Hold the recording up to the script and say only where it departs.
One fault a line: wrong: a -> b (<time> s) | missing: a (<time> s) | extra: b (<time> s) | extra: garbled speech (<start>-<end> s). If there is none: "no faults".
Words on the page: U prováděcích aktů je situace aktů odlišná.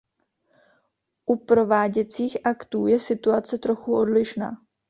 wrong: aktů -> trochu (3.6 s)